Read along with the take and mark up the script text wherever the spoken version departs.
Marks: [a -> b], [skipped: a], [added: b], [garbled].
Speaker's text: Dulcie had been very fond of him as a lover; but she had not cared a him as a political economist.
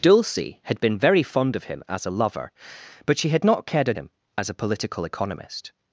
Dulcie had been very fond of him as a lover; but she had not cared a him as a political economist.